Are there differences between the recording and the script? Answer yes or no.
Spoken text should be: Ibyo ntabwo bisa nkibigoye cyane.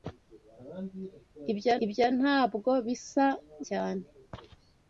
yes